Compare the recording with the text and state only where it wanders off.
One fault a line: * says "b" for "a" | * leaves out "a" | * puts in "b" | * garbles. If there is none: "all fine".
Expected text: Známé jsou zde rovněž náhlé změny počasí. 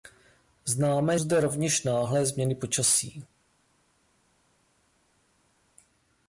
* leaves out "jsou"